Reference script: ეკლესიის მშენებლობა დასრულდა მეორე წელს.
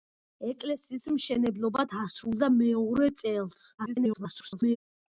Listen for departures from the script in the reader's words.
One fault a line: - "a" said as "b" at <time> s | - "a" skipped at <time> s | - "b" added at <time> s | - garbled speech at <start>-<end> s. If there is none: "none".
- garbled speech at 3.8-4.8 s